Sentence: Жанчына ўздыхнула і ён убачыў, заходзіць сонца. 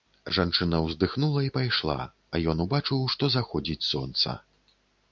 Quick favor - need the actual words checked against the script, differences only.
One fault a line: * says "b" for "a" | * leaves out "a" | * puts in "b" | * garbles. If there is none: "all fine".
* puts in "пайшла а"
* puts in "што"